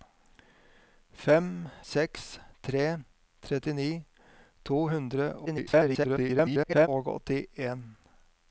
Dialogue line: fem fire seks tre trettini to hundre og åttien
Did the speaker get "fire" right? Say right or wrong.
wrong